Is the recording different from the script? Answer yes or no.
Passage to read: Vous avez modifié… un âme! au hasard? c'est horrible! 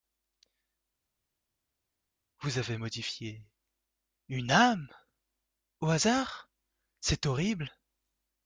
yes